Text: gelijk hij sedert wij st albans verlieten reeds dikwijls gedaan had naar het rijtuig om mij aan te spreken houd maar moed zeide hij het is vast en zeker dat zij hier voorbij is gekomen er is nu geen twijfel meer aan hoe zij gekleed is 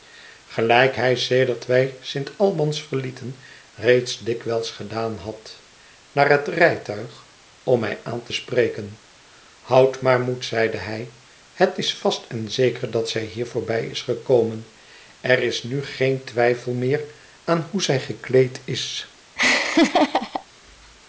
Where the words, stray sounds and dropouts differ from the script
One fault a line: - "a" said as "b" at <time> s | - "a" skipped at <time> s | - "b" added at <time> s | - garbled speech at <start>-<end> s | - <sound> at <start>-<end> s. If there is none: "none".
- laugh at 19.4-20.5 s